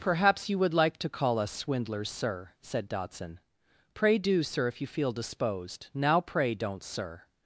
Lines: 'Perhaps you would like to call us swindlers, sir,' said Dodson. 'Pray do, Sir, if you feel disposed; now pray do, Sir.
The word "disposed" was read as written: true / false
true